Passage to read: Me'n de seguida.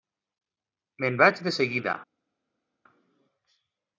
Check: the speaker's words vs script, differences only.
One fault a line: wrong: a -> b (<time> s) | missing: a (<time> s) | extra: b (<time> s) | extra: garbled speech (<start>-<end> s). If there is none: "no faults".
extra: vaig (1.2 s)